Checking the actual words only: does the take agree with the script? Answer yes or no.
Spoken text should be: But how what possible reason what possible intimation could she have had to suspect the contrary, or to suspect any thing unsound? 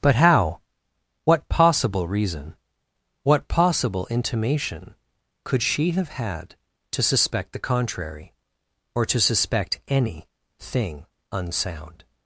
yes